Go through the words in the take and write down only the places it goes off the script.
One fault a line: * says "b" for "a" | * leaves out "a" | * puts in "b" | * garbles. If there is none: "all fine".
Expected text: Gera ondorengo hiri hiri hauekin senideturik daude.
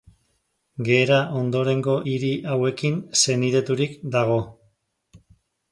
* leaves out "hiri"
* says "dago" for "daude"